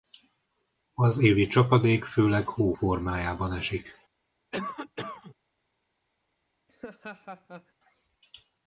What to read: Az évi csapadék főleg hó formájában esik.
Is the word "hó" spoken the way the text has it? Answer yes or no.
yes